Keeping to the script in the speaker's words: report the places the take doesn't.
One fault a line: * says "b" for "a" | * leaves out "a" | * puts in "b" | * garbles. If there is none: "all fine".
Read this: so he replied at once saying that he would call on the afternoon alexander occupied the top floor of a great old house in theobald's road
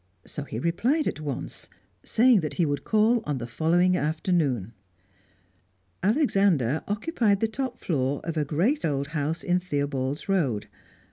* puts in "following"